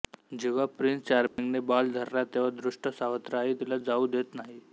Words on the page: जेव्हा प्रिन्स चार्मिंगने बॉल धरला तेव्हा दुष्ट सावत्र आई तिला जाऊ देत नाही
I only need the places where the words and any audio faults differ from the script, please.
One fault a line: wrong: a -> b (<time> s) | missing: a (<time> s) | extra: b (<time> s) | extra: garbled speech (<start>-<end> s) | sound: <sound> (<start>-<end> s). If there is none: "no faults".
sound: dropout (1.3-1.4 s)